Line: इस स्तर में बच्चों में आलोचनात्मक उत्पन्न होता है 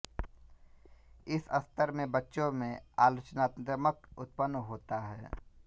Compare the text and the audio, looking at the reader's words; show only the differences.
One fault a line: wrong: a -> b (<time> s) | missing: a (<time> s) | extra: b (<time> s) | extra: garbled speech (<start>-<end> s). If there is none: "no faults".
no faults